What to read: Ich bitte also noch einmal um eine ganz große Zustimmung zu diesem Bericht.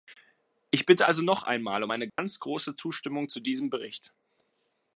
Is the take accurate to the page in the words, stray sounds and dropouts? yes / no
no